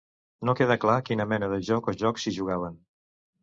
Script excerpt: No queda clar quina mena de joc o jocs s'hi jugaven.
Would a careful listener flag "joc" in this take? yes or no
no